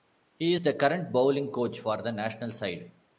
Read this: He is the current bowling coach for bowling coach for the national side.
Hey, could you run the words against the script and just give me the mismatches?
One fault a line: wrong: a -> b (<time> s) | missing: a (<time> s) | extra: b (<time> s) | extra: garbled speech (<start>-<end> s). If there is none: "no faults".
missing: bowling coach for (2.0 s)